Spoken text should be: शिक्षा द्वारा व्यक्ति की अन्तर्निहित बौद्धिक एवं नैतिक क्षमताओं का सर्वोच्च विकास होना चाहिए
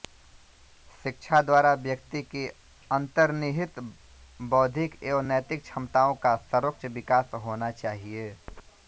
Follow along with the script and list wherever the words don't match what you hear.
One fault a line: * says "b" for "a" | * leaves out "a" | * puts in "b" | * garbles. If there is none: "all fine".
all fine